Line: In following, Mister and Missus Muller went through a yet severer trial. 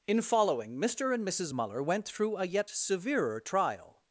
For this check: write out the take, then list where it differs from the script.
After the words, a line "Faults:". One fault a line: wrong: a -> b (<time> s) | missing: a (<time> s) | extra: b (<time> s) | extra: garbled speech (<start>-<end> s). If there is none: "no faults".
In following, Mister and Missus Muller went through a yet severer trial.
Faults:
no faults